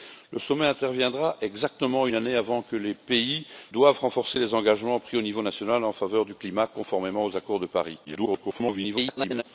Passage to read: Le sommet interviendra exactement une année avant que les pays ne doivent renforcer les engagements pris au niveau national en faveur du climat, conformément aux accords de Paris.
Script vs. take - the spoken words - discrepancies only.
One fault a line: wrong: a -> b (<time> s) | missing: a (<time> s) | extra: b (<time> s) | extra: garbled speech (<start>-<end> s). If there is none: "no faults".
missing: ne (3.4 s)
extra: garbled speech (8.0-9.4 s)